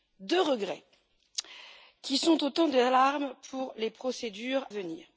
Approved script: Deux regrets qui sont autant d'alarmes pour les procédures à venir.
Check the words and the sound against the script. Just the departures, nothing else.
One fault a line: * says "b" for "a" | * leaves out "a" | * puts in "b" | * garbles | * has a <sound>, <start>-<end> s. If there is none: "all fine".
* leaves out "à"